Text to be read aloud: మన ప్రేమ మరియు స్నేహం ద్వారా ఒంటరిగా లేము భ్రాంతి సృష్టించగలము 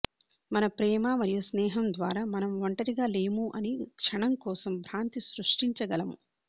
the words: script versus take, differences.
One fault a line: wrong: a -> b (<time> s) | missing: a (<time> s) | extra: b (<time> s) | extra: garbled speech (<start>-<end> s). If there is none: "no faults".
extra: మనం (2.3 s)
extra: అని క్షణం కోసం (3.6 s)